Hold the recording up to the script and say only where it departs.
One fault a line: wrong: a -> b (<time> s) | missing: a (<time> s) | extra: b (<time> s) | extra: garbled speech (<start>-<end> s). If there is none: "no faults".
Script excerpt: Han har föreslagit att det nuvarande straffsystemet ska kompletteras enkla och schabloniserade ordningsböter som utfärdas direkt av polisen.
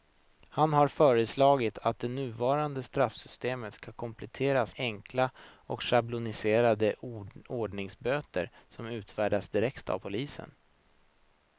no faults